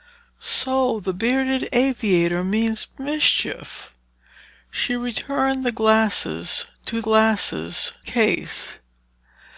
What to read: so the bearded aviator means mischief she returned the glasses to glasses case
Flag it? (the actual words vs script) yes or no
no